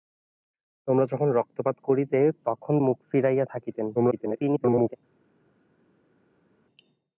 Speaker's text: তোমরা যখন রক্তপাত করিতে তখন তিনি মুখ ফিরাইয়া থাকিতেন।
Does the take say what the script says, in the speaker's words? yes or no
no